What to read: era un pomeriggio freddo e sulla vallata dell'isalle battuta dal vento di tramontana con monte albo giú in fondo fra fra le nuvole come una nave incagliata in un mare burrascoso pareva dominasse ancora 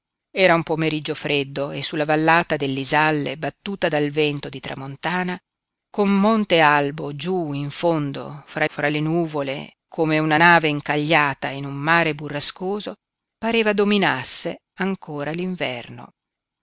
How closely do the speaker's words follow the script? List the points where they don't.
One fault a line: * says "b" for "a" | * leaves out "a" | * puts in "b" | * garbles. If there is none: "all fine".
all fine